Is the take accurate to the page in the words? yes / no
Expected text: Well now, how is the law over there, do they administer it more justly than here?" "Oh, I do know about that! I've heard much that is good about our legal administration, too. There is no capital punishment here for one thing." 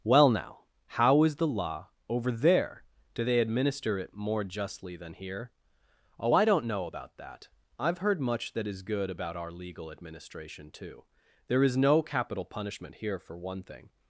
no